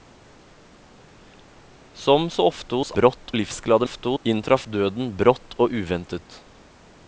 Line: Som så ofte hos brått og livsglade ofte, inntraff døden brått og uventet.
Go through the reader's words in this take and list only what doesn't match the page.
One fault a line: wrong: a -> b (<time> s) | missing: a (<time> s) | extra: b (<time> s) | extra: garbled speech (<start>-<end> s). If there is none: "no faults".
no faults